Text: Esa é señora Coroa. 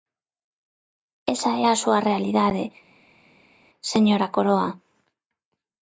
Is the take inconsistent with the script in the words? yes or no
yes